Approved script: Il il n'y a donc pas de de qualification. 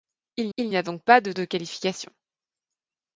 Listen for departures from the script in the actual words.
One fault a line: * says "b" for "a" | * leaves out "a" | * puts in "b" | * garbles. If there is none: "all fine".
all fine